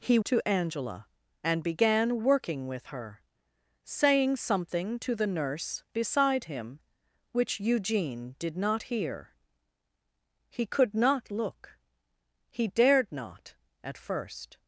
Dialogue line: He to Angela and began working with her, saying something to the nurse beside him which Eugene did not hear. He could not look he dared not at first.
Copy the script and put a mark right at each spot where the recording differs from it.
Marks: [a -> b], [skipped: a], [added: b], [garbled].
He to Angela and began working with her, saying something to the nurse beside him which Eugene did not hear. He could not look he dared not at first.